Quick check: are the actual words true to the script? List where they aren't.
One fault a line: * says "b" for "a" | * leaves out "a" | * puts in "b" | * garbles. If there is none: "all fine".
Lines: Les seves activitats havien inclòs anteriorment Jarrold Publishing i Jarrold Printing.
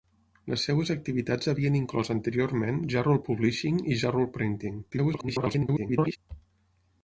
* garbles